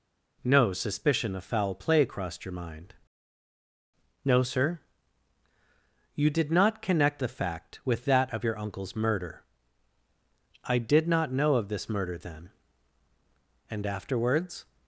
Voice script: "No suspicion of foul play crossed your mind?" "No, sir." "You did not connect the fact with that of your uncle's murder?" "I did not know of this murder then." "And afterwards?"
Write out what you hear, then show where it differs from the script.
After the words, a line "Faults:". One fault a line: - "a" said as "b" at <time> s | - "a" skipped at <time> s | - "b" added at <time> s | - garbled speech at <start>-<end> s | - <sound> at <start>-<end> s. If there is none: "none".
"No suspicion of foul play crossed your mind?" "No, sir." "You did not connect the fact with that of your uncle's murder?" "I did not know of this murder then." "And afterwards?"
Faults:
none